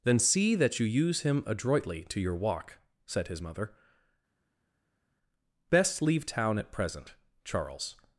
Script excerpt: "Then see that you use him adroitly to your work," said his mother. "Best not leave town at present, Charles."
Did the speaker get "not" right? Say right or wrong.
wrong